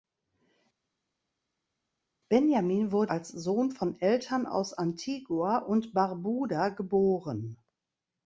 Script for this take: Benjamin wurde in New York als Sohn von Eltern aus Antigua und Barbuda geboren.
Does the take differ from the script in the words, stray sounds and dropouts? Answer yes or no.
yes